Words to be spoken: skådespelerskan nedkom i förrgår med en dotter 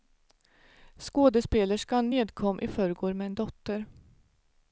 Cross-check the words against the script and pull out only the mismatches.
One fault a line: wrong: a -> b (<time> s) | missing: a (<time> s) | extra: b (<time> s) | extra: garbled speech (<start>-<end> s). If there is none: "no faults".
no faults